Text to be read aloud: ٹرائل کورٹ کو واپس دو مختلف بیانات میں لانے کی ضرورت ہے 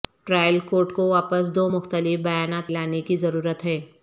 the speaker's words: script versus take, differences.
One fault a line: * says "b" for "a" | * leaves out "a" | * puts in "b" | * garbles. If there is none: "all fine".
* leaves out "میں"